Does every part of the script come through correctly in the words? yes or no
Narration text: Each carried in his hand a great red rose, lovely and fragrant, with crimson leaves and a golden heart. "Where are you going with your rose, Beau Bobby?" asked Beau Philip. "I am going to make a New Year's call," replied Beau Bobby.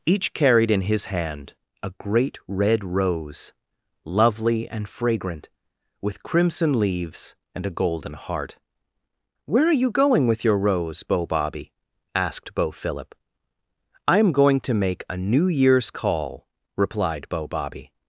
yes